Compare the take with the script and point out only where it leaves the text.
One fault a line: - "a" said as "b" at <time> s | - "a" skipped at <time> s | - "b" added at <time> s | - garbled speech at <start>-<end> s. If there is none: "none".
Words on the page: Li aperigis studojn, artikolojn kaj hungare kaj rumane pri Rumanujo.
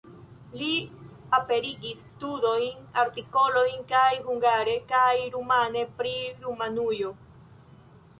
none